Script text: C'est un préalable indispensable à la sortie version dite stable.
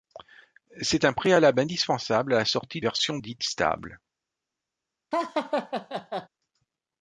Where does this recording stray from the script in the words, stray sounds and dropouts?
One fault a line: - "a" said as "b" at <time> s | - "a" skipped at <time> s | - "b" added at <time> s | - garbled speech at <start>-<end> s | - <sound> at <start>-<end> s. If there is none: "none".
- laugh at 5.1-6.3 s